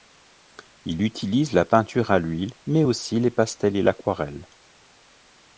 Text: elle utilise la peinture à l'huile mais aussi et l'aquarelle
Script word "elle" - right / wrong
wrong